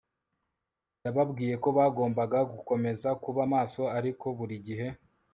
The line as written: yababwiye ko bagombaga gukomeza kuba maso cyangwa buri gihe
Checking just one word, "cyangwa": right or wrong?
wrong